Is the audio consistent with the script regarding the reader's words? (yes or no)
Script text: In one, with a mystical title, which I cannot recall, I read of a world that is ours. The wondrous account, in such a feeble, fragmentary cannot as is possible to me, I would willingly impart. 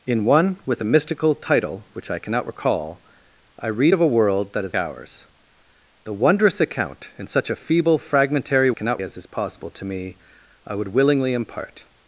yes